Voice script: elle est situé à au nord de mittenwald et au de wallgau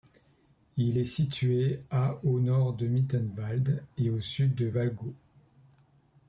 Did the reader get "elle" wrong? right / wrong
wrong